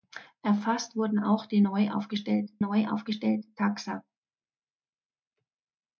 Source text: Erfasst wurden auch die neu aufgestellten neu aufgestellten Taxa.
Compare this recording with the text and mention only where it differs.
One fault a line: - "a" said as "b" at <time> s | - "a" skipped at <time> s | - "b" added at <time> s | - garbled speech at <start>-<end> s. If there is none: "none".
none